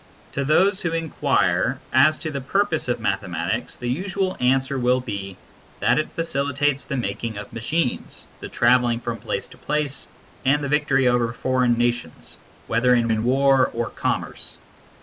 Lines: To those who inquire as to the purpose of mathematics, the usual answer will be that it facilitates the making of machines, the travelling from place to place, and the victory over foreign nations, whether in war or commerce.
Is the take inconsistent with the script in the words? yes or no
yes